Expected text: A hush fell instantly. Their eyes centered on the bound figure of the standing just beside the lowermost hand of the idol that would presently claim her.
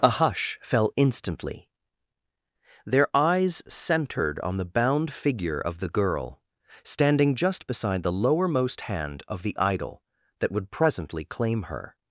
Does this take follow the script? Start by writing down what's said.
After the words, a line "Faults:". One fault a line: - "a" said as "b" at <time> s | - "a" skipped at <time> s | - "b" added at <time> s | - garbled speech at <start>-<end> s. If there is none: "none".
A hush fell instantly. Their eyes centered on the bound figure of the girl, standing just beside the lowermost hand of the idol that would presently claim her.
Faults:
- "girl" added at 5.9 s